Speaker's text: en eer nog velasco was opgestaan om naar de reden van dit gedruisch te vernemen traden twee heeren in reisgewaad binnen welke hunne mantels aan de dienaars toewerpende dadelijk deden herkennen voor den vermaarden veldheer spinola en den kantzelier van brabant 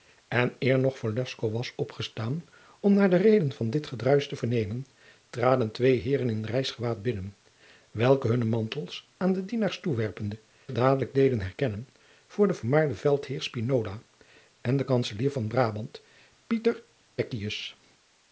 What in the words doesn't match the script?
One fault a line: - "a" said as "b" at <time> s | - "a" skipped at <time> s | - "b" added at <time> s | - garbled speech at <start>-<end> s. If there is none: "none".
none